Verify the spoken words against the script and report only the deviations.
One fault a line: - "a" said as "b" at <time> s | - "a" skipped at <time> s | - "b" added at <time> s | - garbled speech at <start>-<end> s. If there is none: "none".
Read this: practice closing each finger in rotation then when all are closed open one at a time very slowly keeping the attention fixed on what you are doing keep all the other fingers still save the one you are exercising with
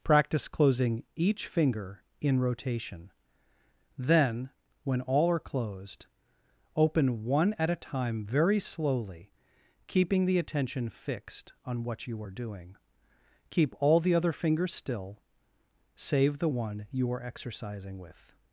none